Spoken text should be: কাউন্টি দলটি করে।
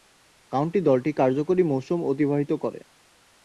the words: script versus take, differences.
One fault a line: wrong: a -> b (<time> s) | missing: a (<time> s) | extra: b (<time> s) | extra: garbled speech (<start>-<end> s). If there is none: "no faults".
extra: কার্যকরী মৌসুম অতিবাহিত (1.1 s)